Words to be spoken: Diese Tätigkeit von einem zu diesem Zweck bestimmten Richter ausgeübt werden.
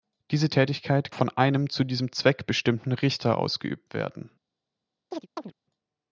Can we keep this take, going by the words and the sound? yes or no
no